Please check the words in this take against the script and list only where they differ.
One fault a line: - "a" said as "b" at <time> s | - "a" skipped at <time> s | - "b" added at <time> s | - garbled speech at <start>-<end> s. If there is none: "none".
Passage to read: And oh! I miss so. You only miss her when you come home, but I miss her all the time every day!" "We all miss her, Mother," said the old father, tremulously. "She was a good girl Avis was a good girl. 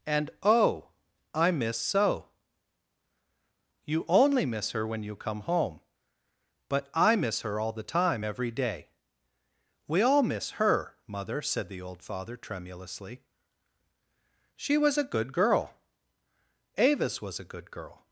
none